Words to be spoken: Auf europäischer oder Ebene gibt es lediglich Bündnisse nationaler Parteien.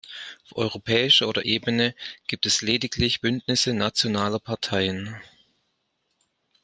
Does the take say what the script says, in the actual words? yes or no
yes